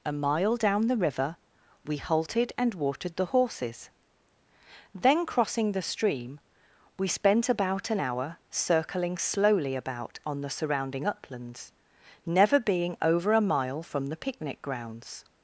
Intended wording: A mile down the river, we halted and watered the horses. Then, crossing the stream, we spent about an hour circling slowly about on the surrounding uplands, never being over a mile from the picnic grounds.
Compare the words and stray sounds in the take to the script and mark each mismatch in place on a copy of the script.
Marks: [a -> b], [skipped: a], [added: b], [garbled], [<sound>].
A mile down the river, we halted and watered the horses. Then, crossing the stream, we spent about an hour circling slowly about on the surrounding uplands, never being over a mile from the picnic grounds.